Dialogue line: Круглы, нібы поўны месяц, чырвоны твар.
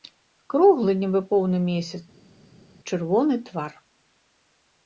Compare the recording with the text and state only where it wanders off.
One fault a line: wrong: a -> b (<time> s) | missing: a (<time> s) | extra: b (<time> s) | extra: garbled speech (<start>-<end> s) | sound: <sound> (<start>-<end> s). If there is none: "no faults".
no faults